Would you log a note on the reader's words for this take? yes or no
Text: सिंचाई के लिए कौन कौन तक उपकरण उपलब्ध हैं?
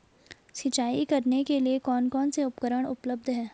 yes